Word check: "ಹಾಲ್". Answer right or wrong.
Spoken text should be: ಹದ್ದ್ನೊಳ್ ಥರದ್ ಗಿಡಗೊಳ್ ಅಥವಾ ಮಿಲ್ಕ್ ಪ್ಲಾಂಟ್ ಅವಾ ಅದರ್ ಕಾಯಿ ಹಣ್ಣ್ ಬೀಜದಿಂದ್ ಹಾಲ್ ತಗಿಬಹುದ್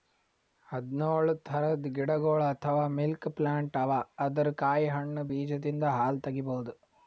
right